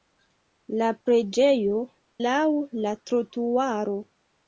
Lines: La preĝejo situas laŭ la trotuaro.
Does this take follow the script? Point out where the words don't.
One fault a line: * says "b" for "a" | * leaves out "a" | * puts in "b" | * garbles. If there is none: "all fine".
* leaves out "situas"